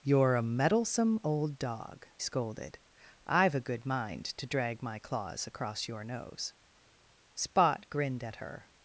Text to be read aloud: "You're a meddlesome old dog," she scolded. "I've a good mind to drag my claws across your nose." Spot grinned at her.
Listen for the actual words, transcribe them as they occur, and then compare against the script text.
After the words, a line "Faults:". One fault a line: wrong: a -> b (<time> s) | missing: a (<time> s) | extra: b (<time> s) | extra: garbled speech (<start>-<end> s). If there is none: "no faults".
"You're a meddlesome old dog," scolded. "I've a good mind to drag my claws across your nose." Spot grinned at her.
Faults:
missing: she (2.1 s)